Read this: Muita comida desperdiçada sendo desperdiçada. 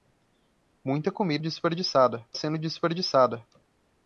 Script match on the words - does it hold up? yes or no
yes